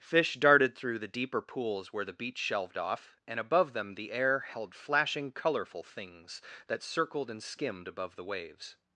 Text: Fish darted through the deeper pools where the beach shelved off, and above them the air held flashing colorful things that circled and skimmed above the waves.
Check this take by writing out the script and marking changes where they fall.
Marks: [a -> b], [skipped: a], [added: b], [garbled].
Fish darted through the deeper pools where the beach shelved off, and above them the air held flashing colorful things that circled and skimmed above the waves.